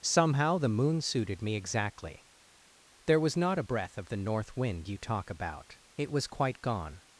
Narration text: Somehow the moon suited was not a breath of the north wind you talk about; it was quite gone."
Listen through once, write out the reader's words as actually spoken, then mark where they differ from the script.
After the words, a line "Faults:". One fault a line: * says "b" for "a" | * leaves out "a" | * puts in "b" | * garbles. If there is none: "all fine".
Somehow the moon suited me exactly. There was not a breath of the north wind you talk about; it was quite gone."
Faults:
* puts in "me exactly There"